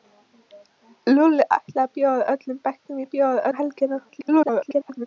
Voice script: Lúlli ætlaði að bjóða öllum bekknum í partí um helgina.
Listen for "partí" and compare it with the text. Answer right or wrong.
wrong